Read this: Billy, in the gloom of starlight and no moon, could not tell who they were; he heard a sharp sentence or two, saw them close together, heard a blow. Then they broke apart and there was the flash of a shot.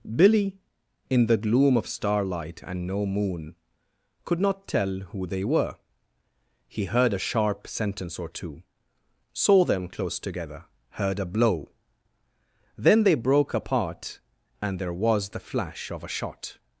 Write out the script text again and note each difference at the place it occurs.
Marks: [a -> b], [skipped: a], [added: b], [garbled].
Billy, in the gloom of starlight and no moon, could not tell who they were; he heard a sharp sentence or two, saw them close together, heard a blow. Then they broke apart and there was the flash of a shot.